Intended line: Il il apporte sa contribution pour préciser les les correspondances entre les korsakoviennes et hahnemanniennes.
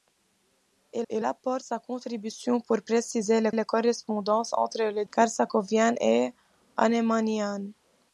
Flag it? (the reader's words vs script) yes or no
no